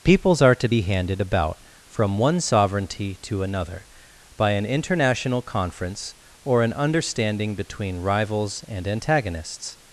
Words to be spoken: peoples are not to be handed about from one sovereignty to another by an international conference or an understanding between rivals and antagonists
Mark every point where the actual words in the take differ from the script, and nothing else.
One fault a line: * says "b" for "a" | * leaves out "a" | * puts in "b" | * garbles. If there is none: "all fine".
* leaves out "not"